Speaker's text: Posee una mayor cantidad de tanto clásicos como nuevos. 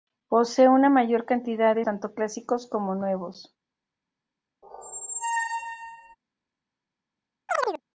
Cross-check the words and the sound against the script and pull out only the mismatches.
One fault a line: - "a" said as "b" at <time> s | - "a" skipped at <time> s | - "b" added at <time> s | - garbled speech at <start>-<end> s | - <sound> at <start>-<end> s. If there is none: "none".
- squeak at 4.6-6.2 s
- chirp at 7.5-7.8 s